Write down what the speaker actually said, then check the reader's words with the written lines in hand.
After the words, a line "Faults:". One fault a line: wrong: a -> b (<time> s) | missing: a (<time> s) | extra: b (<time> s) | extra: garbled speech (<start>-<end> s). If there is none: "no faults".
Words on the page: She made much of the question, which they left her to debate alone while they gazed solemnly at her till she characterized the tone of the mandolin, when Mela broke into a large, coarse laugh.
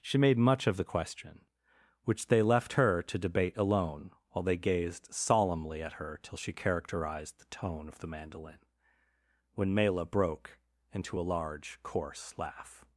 She made much of the question, which they left her to debate alone while they gazed solemnly at her till she characterized the tone of the mandolin, when Mela broke into a large, coarse laugh.
Faults:
no faults